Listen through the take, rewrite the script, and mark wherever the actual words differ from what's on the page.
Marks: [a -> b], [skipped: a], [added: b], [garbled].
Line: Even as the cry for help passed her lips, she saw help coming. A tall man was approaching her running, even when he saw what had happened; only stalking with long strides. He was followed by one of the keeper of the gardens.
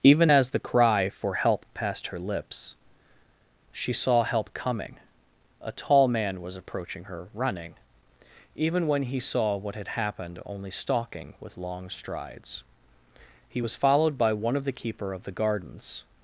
Even as the cry for help passed her lips, she saw help coming. A tall man was approaching her running, even when he saw what had happened; only stalking with long strides. He was followed by one of the keeper of the gardens.